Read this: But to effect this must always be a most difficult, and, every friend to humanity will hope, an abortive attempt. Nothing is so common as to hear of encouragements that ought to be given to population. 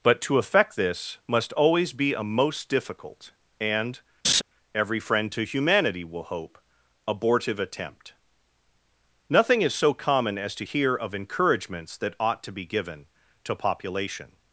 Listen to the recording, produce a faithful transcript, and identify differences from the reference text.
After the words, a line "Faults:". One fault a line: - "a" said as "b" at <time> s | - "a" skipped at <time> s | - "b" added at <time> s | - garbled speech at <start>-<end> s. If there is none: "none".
But to effect this must always be a most difficult, and, every friend to humanity will hope, abortive attempt. Nothing is so common as to hear of encouragements that ought to be given to population.
Faults:
- "an" skipped at 6.6 s